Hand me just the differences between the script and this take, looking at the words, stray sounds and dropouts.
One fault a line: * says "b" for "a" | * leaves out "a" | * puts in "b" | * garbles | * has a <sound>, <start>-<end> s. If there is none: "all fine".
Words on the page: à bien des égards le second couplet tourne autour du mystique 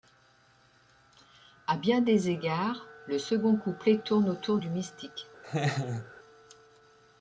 * has a laugh, 5.4-6.1 s